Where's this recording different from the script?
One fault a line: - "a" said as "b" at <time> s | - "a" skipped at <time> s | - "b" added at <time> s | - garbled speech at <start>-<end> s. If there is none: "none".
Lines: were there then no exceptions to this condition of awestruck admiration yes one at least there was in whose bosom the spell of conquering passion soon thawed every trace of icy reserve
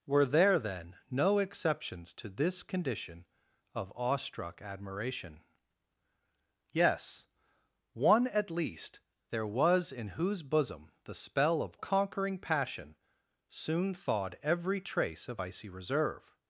none